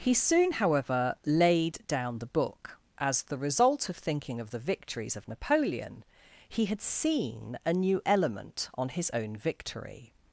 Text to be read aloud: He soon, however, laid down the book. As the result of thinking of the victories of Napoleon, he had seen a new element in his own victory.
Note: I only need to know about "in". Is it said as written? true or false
false